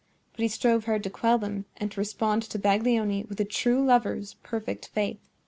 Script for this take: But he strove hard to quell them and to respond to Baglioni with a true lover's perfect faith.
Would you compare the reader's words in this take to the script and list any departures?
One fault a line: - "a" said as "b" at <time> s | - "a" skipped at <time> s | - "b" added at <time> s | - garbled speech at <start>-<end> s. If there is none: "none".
none